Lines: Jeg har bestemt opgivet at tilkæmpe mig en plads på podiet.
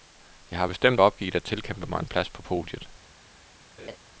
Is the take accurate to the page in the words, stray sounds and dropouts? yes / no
no